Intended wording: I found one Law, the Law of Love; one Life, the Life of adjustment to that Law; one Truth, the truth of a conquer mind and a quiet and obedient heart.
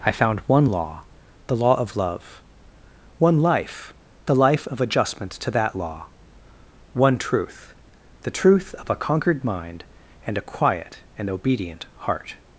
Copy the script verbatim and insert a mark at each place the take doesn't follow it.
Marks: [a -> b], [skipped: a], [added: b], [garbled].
I found one Law, the Law of Love; one Life, the Life of adjustment to that Law; one Truth, the truth of a [conquer -> conquered] mind and a quiet and obedient heart.